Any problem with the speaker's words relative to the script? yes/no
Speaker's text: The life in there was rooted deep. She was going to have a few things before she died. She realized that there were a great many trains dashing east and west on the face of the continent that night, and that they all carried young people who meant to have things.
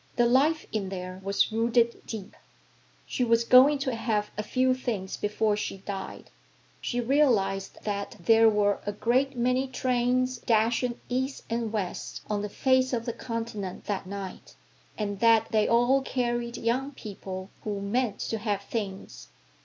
no